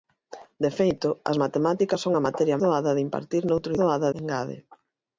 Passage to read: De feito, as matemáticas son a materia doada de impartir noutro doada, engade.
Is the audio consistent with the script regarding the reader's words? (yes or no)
yes